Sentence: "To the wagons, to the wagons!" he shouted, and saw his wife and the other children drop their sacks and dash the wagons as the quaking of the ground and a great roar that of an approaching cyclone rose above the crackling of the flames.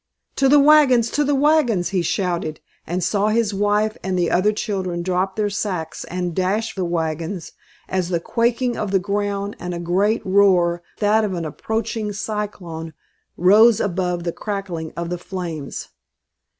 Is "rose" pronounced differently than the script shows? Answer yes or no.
no